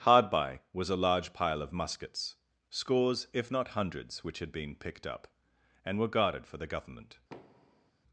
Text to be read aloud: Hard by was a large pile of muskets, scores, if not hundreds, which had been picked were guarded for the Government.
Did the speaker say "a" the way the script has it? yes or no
yes